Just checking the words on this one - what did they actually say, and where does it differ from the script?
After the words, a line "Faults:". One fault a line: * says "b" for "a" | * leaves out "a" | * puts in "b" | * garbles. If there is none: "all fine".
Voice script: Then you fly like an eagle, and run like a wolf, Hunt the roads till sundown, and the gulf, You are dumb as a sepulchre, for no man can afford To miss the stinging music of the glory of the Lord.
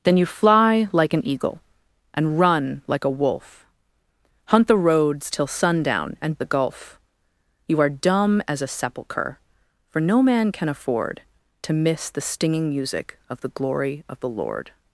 Then you fly like an eagle, and run like a wolf, Hunt the roads till sundown, and the gulf, You are dumb as a sepulchre, for no man can afford To miss the stinging music of the glory of the Lord.
Faults:
all fine